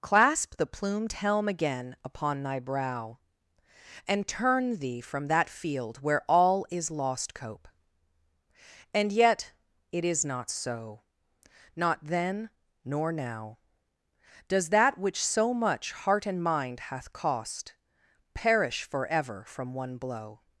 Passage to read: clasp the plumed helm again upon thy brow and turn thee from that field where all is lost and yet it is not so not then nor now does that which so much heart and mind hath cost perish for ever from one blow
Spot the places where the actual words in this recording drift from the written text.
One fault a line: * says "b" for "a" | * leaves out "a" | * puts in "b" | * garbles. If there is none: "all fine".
* puts in "cope"